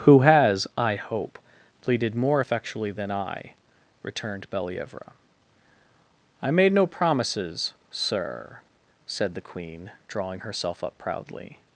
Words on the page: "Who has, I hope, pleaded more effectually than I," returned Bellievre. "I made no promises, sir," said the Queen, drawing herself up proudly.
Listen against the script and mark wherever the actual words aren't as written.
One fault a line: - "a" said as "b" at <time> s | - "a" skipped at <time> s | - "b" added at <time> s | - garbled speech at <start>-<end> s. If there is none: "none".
none